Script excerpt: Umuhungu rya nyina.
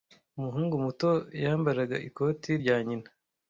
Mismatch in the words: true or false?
true